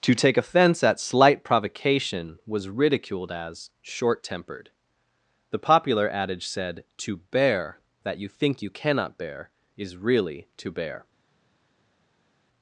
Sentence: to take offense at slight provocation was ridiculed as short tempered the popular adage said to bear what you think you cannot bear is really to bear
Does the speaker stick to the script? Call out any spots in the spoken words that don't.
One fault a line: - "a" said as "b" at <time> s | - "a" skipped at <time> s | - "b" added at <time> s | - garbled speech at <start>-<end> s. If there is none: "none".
- "what" said as "that" at 8.0 s